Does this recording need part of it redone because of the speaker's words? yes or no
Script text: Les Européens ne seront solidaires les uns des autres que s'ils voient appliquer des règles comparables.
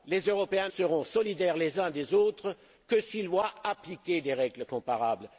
yes